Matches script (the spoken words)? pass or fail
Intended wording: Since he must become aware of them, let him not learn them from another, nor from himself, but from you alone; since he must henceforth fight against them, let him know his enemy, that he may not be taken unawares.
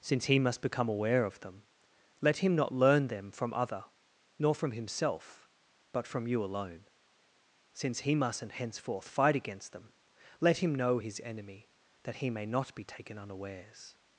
fail